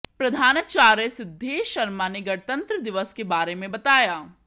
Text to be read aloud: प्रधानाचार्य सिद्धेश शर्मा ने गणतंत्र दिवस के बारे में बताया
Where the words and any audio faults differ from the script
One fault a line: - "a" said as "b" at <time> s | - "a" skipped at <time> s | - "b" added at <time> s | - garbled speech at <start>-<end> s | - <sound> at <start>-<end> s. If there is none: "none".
none